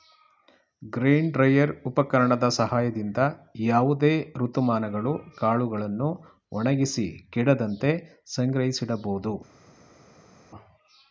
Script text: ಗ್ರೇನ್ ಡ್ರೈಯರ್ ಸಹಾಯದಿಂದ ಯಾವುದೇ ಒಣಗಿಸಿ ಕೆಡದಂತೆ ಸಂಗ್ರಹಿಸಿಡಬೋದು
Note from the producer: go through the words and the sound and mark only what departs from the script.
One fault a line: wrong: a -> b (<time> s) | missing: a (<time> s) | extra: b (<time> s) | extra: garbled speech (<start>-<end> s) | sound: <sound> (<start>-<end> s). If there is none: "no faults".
extra: ಉಪಕರಣದ (1.9 s)
extra: ಋತುಮಾನಗಳು ಕಾಳುಗಳನ್ನು (4.4 s)